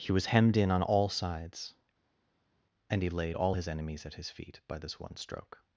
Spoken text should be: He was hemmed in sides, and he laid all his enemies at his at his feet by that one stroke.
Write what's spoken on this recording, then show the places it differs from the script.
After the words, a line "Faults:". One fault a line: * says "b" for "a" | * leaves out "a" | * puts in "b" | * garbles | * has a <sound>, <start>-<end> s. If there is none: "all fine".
He was hemmed in on all sides, and he laid all his enemies at his feet by this one stroke.
Faults:
* puts in "on all"
* leaves out "at his"
* says "this" for "that"